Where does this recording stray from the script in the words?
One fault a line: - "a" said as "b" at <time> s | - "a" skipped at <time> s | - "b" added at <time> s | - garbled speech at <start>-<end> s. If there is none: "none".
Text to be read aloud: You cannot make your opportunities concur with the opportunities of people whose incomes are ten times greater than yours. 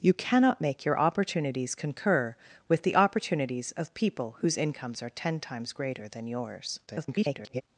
- garbled speech at 6.9-7.6 s